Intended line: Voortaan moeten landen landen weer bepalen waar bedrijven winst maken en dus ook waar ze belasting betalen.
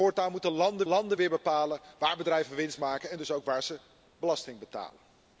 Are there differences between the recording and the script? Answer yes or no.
no